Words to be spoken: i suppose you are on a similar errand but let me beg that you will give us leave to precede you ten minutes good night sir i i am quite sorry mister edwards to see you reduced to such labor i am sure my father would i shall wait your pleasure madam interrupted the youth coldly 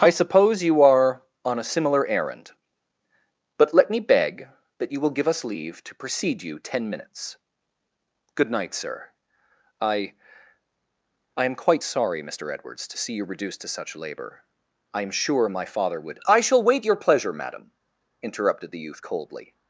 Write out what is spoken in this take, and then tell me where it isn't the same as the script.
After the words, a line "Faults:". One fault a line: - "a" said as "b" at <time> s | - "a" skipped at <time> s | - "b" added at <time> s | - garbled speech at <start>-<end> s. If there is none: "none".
i suppose you are on a similar errand but let me beg that you will give us leave to precede you ten minutes good night sir i i am quite sorry mister edwards to see you reduced to such labor i am sure my father would i shall wait your pleasure madam interrupted the youth coldly
Faults:
none